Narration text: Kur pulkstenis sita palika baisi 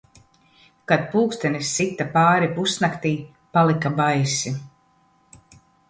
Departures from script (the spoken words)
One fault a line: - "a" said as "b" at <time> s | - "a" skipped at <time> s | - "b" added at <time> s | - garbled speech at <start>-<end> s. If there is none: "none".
- "Kur" said as "Kad" at 0.9 s
- "pāri pusnaktij" added at 2.2 s